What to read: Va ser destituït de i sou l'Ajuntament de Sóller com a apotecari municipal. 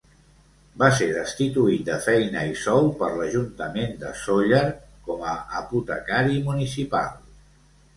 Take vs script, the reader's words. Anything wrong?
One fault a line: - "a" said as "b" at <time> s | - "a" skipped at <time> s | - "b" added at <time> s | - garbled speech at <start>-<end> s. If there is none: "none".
- "feina" added at 2.1 s
- "per" added at 3.0 s